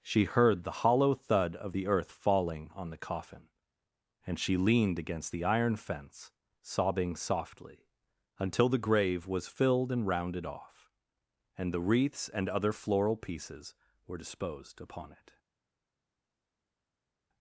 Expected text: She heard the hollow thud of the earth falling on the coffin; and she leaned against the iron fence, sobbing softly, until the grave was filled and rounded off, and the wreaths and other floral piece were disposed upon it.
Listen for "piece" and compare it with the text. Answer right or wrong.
wrong